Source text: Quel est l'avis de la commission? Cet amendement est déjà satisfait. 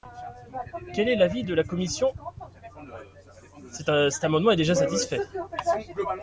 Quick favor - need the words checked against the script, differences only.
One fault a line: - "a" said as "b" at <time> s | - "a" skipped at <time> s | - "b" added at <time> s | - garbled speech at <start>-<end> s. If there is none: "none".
none